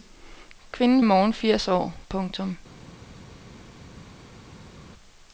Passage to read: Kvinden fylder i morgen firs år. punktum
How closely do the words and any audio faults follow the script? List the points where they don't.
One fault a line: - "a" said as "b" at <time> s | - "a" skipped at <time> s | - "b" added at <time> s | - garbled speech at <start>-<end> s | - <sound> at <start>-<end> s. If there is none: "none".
- "fylder" skipped at 1.0 s